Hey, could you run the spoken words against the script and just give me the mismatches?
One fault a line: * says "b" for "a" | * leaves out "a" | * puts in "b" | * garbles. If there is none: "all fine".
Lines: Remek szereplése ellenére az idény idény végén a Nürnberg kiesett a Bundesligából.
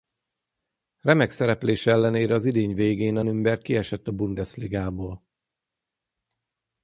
* leaves out "idény"